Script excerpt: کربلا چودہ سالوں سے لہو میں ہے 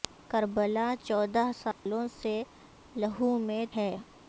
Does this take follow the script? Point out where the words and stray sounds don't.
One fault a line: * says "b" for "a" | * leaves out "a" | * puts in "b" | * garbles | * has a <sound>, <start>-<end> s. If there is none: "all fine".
* has a dropout, 1.7-1.9 s